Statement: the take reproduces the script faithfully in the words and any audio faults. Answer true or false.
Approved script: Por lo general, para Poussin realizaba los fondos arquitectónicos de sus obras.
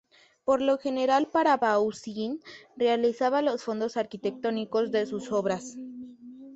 true